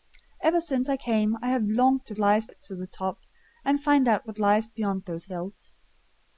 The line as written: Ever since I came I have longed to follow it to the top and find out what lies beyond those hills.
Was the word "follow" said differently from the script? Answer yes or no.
yes